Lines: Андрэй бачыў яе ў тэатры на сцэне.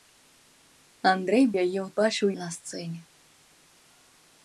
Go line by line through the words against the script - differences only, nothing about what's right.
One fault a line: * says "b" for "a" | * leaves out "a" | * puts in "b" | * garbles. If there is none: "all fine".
* leaves out "бачыў"
* says "бачыў" for "тэатры"